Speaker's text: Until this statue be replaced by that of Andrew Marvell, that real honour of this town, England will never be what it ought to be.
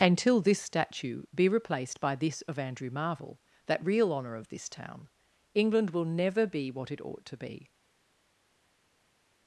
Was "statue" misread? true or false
false